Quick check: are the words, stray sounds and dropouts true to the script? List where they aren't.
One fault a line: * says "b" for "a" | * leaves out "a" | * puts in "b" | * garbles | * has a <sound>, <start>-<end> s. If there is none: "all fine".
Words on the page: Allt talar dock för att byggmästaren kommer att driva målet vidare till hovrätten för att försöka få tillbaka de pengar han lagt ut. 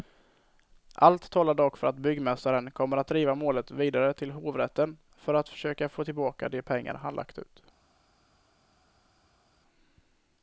all fine